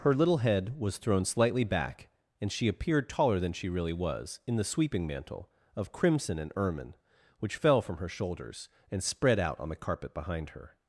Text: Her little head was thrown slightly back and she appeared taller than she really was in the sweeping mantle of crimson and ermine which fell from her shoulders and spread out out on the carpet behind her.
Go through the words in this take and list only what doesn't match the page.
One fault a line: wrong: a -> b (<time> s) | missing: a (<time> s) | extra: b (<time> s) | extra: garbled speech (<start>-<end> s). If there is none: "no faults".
missing: out (9.6 s)